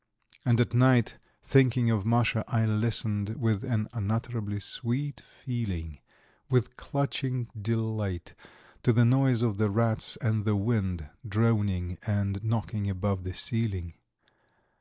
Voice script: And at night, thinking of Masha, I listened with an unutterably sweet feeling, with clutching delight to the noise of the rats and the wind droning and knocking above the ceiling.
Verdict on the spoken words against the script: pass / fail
pass